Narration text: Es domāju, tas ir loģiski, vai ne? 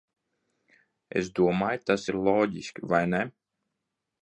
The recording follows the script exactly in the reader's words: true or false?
true